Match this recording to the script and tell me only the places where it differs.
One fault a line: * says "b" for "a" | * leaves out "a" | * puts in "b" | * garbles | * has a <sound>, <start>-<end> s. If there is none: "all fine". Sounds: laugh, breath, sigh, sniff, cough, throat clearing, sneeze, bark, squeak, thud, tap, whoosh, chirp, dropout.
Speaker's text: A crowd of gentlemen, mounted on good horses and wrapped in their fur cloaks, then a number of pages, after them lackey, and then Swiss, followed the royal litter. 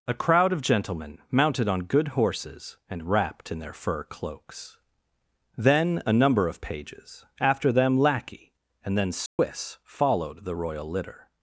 * has a dropout, 9.3-9.4 s